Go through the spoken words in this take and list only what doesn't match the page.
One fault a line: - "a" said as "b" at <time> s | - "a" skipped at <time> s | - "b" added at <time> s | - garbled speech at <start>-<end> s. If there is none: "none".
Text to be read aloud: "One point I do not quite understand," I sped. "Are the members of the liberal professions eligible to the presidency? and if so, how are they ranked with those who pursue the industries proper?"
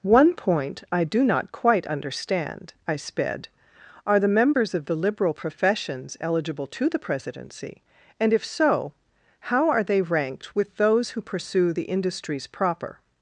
none